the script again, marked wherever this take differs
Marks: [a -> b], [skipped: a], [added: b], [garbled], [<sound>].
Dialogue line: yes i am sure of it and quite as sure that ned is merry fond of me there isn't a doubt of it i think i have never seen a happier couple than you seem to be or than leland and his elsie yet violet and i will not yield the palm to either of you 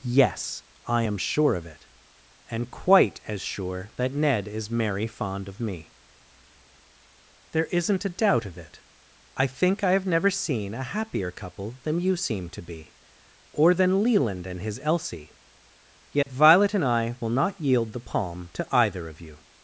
yes i am sure of it and quite as sure that ned is merry fond of me there isn't a doubt of it i think i have never seen a happier couple than you seem to be or than leland and his elsie yet [dropout] violet and i will not yield the palm to either of you